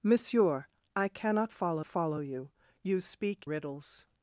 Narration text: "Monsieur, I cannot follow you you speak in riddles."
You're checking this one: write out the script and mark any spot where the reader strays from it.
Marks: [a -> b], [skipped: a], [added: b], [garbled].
"Monsieur, I cannot follow [added: follow] you you speak [skipped: in] riddles."